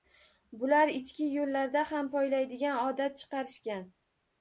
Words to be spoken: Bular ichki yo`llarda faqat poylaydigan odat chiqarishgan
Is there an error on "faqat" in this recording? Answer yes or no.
yes